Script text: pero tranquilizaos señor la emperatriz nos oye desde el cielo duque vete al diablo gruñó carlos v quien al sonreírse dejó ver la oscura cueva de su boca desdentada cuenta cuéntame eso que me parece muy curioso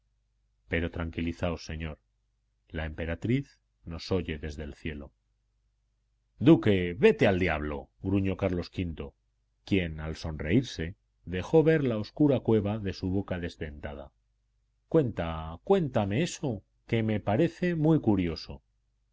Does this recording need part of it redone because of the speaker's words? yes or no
no